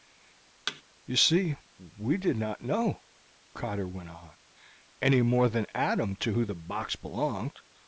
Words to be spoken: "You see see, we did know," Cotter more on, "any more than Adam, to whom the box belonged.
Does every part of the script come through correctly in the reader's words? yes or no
no